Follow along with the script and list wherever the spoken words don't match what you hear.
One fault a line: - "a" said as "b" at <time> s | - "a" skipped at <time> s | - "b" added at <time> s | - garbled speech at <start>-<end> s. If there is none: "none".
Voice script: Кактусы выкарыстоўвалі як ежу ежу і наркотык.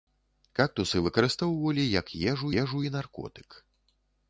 none